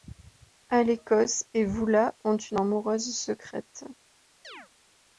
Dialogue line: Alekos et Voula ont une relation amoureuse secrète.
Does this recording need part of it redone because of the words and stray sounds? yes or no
yes